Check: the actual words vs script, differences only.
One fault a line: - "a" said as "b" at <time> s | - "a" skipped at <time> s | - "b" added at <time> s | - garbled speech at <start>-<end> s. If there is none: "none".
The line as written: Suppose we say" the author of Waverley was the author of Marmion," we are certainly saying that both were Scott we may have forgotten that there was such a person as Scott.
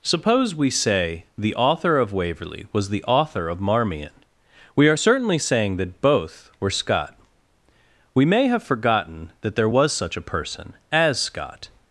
none